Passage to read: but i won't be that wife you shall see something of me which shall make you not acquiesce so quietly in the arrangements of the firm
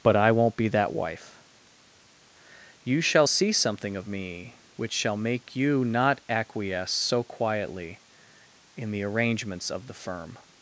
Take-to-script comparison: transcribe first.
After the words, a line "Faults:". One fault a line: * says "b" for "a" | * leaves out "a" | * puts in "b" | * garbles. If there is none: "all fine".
but i won't be that wife you shall see something of me which shall make you not acquiesce so quietly in the arrangements of the firm
Faults:
all fine